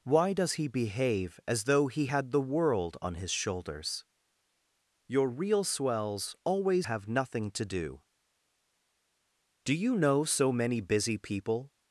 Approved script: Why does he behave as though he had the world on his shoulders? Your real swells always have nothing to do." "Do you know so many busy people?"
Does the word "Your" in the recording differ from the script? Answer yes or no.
no